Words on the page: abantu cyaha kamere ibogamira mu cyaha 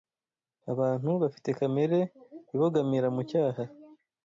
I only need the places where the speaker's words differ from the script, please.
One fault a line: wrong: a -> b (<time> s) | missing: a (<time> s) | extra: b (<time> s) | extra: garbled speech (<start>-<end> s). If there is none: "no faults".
wrong: cyaha -> bafite (1.2 s)